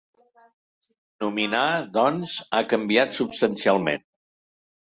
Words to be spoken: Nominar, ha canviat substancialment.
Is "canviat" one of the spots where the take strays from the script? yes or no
no